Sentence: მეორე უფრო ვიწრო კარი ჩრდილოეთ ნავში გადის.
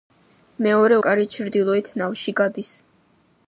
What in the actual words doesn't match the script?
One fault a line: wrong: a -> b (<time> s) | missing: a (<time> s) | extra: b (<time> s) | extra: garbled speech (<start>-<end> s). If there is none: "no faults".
missing: უფრო ვიწრო (0.9 s)